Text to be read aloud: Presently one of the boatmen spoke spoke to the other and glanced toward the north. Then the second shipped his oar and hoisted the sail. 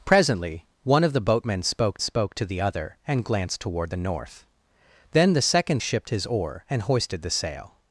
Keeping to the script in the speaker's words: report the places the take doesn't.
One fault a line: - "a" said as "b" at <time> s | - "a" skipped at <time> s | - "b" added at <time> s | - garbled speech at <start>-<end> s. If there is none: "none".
none